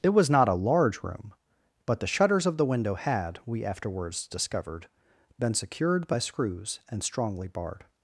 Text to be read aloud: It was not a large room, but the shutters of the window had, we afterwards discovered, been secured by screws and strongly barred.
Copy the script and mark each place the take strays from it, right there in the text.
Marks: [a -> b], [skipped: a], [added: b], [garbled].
It was not a large room, but the shutters of the window had, we afterwards discovered, been secured by screws and strongly barred.